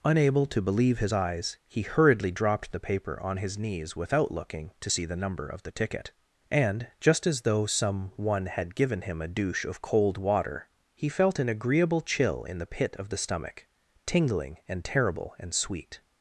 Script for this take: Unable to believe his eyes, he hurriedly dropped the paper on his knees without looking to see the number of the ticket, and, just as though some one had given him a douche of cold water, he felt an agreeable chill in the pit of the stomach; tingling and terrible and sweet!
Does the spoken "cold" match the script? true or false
true